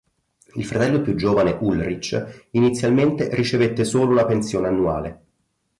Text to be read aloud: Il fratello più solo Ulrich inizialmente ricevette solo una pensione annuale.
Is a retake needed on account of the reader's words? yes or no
yes